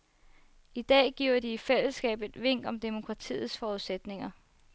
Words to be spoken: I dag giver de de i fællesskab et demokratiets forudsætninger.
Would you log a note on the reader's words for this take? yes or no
yes